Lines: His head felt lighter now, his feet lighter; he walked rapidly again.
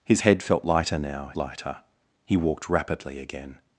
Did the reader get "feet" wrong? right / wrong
wrong